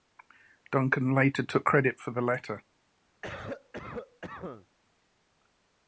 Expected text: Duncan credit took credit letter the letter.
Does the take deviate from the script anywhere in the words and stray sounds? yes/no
yes